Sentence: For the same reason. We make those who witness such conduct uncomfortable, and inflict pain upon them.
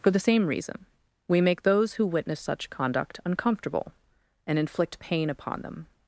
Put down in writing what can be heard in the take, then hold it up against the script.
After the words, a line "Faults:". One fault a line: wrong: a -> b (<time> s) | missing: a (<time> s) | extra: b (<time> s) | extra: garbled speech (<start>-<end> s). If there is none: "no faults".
For the same reason. We make those who witness such conduct uncomfortable, and inflict pain upon them.
Faults:
no faults